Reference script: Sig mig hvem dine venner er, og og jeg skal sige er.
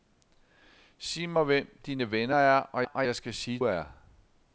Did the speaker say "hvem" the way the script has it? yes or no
yes